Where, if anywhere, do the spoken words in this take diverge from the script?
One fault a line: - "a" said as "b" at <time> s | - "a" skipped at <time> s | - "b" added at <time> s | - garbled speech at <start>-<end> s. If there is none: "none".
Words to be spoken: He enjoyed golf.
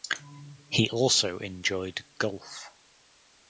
- "also" added at 0.9 s